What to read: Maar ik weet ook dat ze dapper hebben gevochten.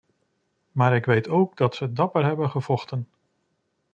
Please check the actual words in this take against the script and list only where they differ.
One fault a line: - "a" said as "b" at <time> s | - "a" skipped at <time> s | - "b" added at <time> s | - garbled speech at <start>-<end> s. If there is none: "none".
none